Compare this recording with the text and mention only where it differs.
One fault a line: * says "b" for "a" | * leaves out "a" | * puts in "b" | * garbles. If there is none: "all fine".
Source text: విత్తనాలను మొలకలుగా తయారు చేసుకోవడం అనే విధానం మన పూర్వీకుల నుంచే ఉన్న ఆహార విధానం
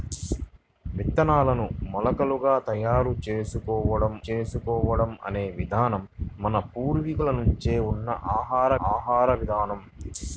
* puts in "చేసుకోవడం"
* puts in "ఆహార"